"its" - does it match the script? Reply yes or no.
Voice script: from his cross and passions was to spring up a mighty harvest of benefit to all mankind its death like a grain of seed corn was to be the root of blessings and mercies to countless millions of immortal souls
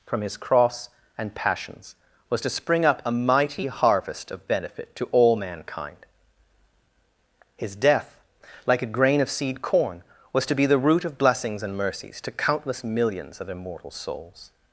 no